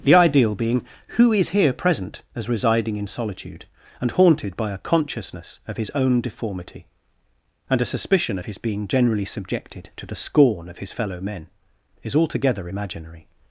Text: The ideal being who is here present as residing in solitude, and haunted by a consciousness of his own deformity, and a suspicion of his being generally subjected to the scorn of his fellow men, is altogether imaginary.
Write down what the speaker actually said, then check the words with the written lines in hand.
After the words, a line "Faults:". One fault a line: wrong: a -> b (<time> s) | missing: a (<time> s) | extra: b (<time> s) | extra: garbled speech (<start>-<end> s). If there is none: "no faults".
The ideal being who is here present as residing in solitude, and haunted by a consciousness of his own deformity, and a suspicion of his being generally subjected to the scorn of his fellow men, is altogether imaginary.
Faults:
no faults